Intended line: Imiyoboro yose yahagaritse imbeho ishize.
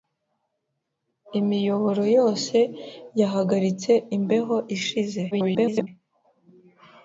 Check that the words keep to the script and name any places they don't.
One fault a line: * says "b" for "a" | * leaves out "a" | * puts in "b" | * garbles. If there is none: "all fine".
* garbles